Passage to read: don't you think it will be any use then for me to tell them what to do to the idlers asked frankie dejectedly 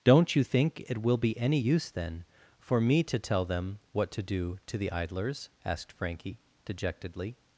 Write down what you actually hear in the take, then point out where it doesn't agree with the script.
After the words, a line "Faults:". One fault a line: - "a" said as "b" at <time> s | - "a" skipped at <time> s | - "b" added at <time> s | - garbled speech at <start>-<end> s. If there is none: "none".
don't you think it will be any use then for me to tell them what to do to the idlers asked frankie dejectedly
Faults:
none